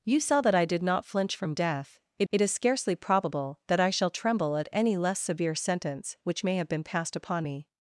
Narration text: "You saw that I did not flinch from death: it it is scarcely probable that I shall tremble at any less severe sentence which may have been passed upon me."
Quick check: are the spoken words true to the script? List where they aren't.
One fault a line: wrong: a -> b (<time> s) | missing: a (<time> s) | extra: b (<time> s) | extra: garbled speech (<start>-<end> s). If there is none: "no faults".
no faults